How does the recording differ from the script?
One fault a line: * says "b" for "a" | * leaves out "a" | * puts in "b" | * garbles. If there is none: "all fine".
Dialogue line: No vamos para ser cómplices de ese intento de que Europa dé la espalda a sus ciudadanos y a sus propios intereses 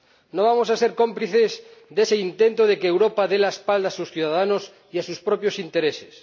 * says "a" for "para"